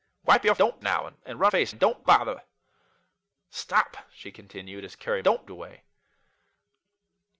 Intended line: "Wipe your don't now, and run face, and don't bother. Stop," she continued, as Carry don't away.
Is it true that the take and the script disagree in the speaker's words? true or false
false